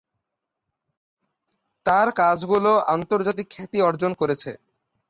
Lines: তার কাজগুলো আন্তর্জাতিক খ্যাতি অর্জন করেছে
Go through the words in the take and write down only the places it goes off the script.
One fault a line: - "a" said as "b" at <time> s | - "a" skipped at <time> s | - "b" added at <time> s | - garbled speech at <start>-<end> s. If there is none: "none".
none